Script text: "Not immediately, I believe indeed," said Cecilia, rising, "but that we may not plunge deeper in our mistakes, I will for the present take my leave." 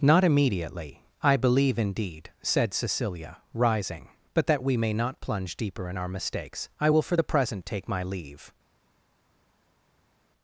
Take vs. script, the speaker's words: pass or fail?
pass